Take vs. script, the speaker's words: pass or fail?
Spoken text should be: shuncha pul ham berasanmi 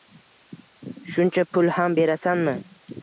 pass